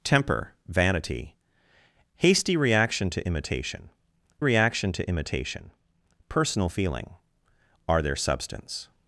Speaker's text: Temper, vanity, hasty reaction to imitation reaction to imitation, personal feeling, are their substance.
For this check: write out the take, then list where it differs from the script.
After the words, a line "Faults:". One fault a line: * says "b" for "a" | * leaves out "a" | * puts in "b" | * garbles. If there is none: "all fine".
Temper, vanity, hasty reaction to imitation reaction to imitation, personal feeling, are their substance.
Faults:
all fine